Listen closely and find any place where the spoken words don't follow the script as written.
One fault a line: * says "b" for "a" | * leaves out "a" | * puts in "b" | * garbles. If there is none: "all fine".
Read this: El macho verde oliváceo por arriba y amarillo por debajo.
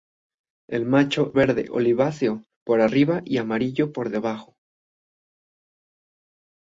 all fine